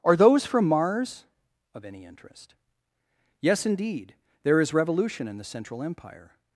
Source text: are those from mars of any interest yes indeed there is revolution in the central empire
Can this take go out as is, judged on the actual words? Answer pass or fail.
pass